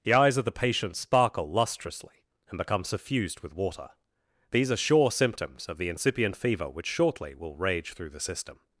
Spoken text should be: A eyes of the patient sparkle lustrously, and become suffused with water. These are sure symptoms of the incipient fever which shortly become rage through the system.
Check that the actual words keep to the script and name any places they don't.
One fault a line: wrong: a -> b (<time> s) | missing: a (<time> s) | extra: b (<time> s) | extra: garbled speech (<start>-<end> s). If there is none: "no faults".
wrong: A -> The (0.0 s)
wrong: become -> will (7.3 s)